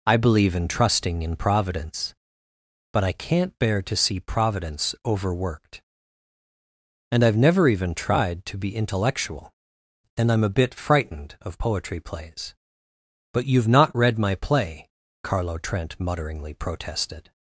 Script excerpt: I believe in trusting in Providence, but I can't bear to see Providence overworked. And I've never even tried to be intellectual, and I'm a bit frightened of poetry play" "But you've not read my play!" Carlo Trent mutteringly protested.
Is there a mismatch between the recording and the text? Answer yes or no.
yes